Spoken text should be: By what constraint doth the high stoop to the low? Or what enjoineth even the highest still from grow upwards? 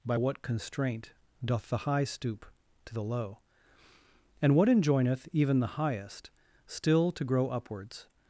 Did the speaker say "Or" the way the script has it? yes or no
no